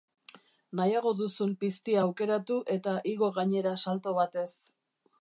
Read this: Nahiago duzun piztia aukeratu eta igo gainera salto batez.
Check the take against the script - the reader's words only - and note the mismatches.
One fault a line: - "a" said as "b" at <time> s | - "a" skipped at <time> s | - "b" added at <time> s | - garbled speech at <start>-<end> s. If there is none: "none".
none